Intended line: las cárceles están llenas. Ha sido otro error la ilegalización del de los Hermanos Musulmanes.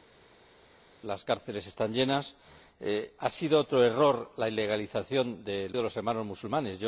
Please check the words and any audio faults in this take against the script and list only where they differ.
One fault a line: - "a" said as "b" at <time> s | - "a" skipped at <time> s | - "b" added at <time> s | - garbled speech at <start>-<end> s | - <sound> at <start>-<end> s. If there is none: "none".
none